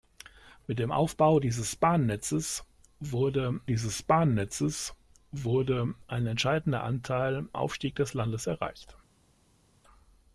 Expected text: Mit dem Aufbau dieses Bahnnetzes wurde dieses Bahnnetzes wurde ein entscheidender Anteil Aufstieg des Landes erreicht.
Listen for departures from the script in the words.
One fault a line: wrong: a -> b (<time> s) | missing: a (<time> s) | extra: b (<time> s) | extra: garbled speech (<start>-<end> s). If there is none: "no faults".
no faults